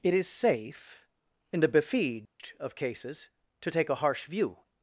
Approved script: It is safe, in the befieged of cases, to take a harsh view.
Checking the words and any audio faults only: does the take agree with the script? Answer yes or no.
no